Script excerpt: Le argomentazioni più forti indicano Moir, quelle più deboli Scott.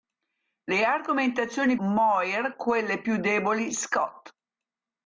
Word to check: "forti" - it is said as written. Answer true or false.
false